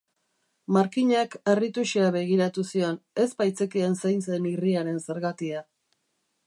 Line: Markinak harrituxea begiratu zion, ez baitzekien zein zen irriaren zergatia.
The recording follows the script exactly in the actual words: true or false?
true